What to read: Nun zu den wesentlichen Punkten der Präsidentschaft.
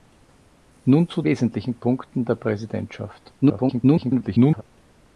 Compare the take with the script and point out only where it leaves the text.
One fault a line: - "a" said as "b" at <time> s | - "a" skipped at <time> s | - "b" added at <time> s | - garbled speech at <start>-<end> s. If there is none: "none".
- "den" skipped at 1.2 s
- garbled speech at 3.4-4.6 s